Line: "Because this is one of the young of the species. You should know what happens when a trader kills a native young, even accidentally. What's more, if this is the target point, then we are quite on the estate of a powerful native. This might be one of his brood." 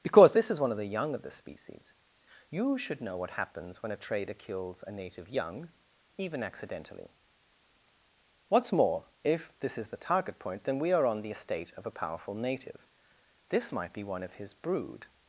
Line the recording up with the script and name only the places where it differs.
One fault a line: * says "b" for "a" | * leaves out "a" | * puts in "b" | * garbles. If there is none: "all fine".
* leaves out "quite"